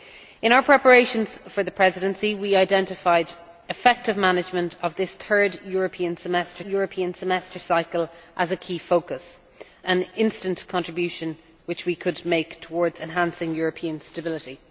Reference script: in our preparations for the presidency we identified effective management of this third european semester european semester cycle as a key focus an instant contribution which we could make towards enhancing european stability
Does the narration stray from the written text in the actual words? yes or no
no